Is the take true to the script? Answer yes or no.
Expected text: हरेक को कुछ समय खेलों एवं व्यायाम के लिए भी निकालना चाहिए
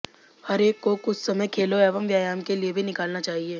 yes